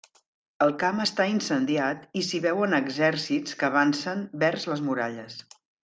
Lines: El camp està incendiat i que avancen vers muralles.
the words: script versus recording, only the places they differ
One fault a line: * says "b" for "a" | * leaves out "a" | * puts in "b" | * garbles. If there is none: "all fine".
* puts in "s'hi veuen exèrcits"
* puts in "les"